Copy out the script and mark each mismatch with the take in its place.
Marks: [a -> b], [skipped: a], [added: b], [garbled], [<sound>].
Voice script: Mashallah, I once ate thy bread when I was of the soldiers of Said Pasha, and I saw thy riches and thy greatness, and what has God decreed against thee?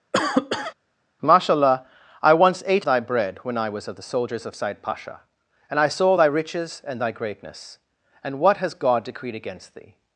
[cough] Mashallah, I once ate thy bread when I was of the soldiers of Said Pasha, and I saw thy riches and thy greatness, and what has God decreed against thee?